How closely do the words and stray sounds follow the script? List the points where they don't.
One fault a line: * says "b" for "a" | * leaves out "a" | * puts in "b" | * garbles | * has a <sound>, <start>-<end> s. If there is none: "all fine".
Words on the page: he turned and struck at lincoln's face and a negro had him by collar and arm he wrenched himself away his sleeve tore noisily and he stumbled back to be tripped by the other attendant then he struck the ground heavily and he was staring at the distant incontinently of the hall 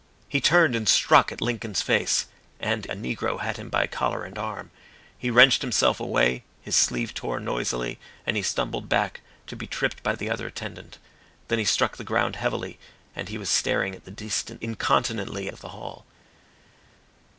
all fine